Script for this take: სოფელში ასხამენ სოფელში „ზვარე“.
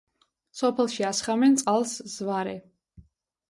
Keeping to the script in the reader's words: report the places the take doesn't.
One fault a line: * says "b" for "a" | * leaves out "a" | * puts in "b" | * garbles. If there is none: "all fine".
* says "წყალს" for "სოფელში"